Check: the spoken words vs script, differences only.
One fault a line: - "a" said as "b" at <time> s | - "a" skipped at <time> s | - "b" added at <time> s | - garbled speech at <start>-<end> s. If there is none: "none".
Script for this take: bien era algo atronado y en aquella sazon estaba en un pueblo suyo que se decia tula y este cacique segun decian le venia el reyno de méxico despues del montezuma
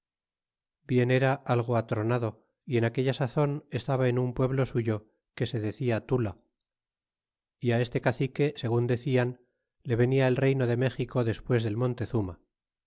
none